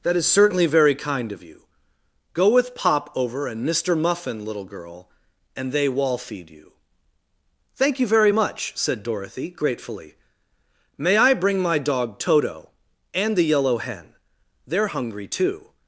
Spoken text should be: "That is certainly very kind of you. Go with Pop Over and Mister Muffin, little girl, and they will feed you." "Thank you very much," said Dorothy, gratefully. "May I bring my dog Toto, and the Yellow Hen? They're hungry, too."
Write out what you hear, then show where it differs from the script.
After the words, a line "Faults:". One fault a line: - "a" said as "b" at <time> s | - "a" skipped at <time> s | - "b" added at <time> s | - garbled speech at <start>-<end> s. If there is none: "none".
"That is certainly very kind of you. Go with Pop Over and Mister Muffin, little girl, and they wall feed you." "Thank you very much," said Dorothy, gratefully. "May I bring my dog Toto, and the Yellow Hen? They're hungry, too."
Faults:
- "will" said as "wall" at 5.9 s